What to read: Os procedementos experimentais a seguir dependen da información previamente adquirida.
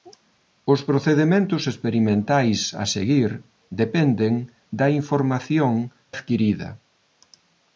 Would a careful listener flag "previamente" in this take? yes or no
yes